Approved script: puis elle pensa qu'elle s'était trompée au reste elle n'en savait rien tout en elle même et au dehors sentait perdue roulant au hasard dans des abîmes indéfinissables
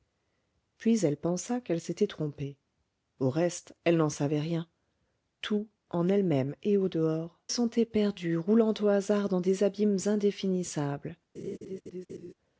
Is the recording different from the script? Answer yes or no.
no